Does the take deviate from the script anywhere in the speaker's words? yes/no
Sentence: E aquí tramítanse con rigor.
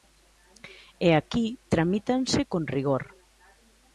no